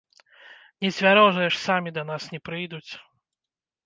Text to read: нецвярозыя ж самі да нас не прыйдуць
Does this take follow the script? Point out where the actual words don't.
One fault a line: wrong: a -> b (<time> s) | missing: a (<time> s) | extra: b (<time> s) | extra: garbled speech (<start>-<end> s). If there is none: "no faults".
no faults